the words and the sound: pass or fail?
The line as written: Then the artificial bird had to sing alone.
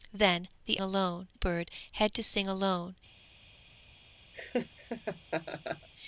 fail